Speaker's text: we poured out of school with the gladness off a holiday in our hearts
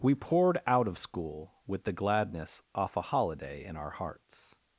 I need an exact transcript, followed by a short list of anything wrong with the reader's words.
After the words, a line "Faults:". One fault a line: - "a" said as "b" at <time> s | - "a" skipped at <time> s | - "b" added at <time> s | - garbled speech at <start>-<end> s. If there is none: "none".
we poured out of school with the gladness off a holiday in our hearts
Faults:
none